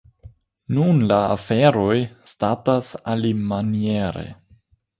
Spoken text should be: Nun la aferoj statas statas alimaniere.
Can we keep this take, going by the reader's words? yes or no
no